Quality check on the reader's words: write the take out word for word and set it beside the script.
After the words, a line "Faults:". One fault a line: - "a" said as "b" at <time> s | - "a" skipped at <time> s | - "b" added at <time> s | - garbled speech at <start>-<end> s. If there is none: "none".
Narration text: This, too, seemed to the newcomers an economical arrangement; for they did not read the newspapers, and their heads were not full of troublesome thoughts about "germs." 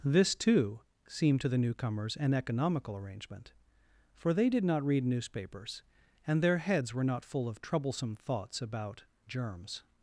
This, too, seemed to the newcomers an economical arrangement; for they did not read newspapers, and their heads were not full of troublesome thoughts about "germs."
Faults:
- "the" skipped at 5.0 s